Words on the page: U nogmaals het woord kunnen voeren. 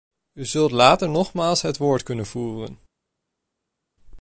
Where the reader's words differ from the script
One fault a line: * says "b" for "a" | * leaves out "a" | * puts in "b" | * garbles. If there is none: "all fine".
* puts in "zult later"